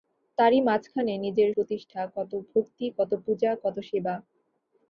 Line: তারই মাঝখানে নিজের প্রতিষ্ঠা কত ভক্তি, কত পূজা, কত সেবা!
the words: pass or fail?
pass